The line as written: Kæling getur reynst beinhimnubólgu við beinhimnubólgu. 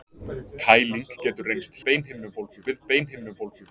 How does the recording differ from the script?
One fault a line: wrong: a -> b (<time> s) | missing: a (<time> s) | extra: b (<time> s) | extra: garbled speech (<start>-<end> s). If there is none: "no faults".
no faults